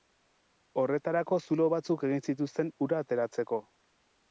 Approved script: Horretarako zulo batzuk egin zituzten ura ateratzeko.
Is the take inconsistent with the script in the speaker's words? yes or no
no